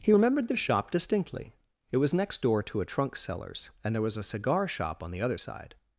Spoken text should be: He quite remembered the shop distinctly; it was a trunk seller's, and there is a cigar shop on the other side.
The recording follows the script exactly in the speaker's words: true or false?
false